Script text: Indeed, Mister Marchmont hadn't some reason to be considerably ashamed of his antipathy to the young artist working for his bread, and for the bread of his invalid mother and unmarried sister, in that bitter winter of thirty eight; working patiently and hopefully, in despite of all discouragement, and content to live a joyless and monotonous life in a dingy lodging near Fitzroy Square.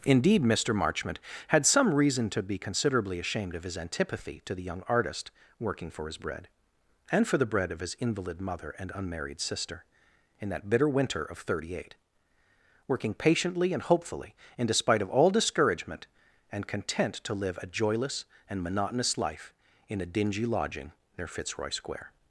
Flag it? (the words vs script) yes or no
yes